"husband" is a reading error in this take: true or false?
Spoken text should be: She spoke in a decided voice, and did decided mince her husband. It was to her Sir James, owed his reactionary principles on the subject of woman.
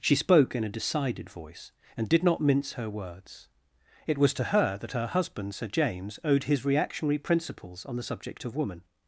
true